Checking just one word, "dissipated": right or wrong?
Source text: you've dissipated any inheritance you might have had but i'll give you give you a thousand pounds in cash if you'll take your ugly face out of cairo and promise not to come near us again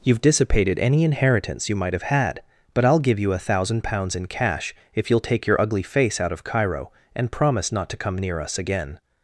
right